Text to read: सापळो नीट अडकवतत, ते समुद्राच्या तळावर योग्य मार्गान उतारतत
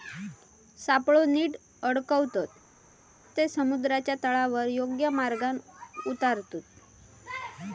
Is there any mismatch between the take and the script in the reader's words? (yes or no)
no